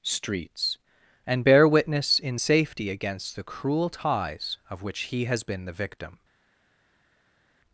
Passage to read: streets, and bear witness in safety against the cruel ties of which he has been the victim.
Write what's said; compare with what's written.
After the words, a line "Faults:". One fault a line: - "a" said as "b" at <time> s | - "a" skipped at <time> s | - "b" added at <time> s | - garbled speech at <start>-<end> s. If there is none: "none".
streets, and bear witness in safety against the cruel ties of which he has been the victim.
Faults:
none